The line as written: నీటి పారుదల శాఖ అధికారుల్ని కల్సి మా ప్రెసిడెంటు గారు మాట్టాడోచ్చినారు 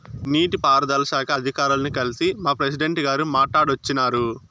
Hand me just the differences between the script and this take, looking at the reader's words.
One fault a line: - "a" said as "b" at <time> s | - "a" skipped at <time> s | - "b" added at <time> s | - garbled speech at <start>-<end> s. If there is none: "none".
none